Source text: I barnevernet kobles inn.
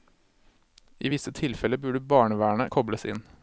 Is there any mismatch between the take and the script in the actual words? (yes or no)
yes